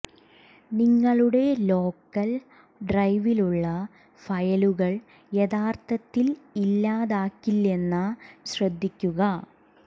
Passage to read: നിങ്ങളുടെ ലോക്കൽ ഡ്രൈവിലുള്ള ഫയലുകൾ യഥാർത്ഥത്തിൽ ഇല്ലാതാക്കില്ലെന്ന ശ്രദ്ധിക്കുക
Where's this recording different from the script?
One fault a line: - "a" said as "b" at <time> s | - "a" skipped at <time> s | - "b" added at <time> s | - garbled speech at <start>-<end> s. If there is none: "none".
none